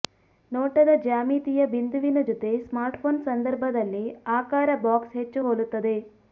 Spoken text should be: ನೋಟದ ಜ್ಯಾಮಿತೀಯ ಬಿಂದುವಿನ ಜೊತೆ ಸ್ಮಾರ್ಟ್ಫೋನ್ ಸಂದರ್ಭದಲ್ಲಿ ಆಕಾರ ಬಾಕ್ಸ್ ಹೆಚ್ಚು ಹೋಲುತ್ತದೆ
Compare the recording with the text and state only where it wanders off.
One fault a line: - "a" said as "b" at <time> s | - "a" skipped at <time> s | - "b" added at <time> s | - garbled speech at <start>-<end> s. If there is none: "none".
none